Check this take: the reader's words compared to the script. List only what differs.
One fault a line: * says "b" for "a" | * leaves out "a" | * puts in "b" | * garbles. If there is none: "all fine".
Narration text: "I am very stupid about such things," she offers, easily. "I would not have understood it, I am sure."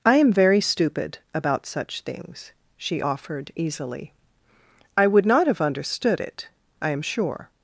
* says "offered" for "offers"